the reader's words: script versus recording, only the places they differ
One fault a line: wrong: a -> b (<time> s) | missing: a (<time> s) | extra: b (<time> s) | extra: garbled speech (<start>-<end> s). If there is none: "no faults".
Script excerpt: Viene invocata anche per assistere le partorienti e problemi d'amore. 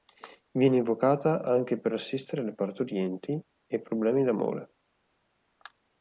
no faults